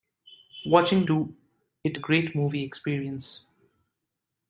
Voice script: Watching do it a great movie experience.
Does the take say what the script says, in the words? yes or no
yes